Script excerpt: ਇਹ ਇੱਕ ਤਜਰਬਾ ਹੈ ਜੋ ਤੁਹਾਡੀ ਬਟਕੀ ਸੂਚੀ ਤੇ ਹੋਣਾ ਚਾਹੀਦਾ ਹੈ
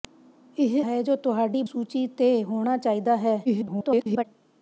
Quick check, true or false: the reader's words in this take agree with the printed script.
false